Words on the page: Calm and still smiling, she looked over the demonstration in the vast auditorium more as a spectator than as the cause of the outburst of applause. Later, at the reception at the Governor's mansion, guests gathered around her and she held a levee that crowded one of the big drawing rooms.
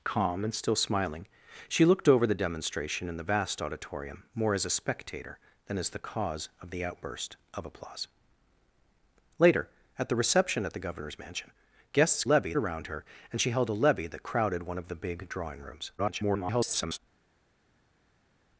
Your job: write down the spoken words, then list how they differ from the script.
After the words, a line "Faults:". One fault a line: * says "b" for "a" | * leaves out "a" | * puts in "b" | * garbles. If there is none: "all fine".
Calm and still smiling, she looked over the demonstration in the vast auditorium more as a spectator than as the cause of the outburst of applause. Later, at the reception at the Governor's mansion, guests levee around her and she held a levee that crowded one of the big drawing rooms. [garbled]
Faults:
* says "levee" for "gathered"
* garbles